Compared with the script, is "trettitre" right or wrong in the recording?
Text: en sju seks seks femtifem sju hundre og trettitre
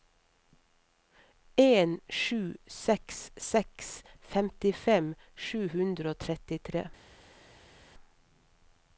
right